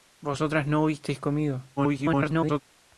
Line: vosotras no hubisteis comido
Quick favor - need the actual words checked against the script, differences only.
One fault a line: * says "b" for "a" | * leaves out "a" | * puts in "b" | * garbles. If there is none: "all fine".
* garbles